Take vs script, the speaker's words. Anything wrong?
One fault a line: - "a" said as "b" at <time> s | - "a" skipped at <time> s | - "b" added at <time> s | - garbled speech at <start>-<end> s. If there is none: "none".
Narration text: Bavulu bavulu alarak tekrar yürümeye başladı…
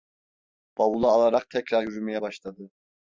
- "bavulu" skipped at 1.1 s